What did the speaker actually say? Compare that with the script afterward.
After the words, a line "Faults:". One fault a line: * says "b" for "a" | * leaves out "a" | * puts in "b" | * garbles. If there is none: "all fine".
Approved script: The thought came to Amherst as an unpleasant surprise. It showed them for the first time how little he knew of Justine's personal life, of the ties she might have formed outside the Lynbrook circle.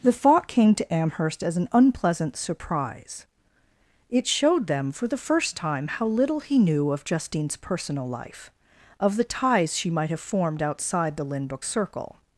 The thought came to Amherst as an unpleasant surprise. It showed them for the first time how little he knew of Justine's personal life, of the ties she might have formed outside the Lynbrook circle.
Faults:
all fine